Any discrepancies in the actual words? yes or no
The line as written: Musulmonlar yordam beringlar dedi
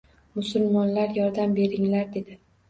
no